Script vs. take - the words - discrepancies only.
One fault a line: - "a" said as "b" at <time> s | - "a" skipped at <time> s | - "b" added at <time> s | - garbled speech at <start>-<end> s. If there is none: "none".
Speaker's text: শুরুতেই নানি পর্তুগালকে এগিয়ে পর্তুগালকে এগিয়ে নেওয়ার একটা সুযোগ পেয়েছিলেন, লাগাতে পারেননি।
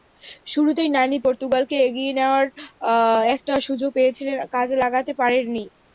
- "পর্তুগালকে এগিয়ে" skipped at 2.1 s
- "কাজে" added at 4.5 s